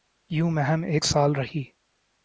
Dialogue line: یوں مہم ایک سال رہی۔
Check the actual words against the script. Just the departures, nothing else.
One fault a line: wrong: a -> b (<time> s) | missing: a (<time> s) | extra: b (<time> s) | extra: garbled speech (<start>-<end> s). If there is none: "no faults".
no faults